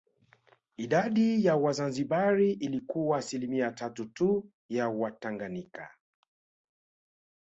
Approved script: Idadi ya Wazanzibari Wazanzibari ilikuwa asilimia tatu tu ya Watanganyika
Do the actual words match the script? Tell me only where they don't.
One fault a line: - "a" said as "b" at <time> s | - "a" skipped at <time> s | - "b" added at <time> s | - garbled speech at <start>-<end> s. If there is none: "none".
- "Wazanzibari" skipped at 2.5 s